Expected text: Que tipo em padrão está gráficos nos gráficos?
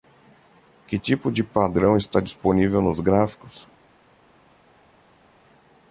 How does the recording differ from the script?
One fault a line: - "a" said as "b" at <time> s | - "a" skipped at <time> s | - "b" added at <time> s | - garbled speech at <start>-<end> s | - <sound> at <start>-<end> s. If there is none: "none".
- "em" said as "de" at 1.3 s
- "gráficos" said as "disponível" at 2.2 s